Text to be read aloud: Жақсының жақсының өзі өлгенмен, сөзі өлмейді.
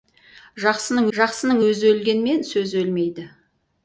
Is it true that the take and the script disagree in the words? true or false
false